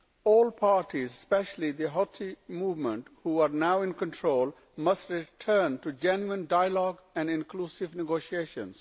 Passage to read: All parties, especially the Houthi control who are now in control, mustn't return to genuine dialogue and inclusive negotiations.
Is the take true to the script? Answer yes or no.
no